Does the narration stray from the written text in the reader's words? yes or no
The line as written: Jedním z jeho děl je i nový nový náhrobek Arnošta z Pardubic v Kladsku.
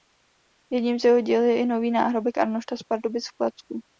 yes